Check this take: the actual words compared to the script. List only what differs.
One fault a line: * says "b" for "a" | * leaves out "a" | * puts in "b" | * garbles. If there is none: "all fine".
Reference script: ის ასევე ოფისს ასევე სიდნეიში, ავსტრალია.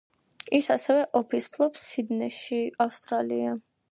* says "ფლობს" for "ასევე"